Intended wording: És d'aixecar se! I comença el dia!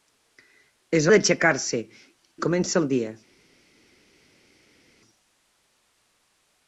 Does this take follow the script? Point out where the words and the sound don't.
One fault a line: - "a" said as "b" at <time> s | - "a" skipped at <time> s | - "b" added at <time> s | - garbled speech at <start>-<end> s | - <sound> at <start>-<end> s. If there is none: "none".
none